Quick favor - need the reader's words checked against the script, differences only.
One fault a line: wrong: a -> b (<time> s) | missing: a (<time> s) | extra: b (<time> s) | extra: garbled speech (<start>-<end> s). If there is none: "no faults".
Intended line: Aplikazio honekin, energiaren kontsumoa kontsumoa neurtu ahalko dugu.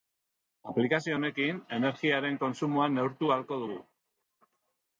missing: kontsumoa (2.9 s)